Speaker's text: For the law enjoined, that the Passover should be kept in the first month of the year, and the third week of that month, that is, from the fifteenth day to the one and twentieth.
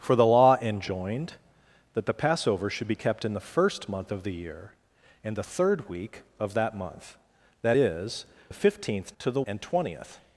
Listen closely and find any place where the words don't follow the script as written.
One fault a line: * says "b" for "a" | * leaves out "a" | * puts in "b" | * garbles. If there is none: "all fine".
* leaves out "from"
* leaves out "day"
* leaves out "one"